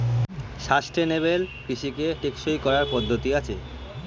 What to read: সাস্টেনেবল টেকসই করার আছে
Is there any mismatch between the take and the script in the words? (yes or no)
yes